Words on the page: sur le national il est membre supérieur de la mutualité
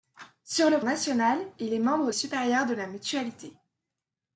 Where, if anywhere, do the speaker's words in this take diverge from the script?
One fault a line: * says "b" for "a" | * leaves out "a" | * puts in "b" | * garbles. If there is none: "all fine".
all fine